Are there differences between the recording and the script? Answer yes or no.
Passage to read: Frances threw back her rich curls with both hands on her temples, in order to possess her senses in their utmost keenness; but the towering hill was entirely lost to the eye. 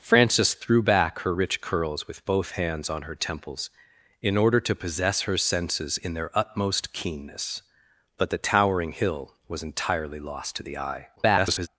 yes